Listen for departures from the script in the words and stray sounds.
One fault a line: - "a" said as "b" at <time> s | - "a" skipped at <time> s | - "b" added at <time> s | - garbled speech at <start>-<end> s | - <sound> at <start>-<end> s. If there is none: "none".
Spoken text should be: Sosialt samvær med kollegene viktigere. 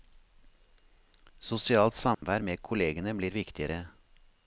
- dropout at 2.1-2.2 s
- "blir" added at 3.1 s